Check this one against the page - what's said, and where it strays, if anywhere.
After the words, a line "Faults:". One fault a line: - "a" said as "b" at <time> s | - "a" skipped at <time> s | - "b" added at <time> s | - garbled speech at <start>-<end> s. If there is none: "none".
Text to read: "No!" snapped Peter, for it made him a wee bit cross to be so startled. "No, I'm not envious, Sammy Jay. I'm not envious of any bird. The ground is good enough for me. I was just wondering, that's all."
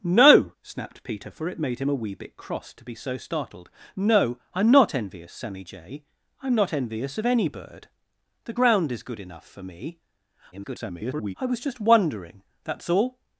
"No!" snapped Peter, for it made him a wee bit cross to be so startled. "No, I'm not envious, Sammy Jay. I'm not envious of any bird. The ground is good enough for me. [garbled] I was just wondering, that's all."
Faults:
- garbled speech at 10.5-11.3 s